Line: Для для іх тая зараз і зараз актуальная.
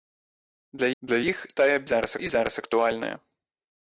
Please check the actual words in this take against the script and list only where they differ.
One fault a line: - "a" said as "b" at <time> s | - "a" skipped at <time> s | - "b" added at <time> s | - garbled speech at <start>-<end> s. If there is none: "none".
none